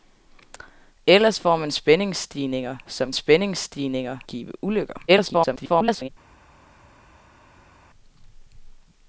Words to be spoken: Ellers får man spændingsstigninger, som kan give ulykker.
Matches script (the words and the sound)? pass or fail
fail